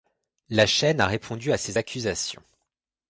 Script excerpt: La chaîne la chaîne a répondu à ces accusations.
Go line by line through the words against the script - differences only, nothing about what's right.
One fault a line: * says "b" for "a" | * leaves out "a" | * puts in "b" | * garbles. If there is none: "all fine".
* leaves out "la chaîne"